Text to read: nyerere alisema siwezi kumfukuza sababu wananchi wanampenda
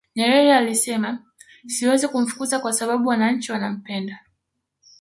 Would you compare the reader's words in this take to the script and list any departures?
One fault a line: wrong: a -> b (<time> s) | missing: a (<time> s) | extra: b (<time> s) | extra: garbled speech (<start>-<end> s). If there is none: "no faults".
extra: kwa (2.6 s)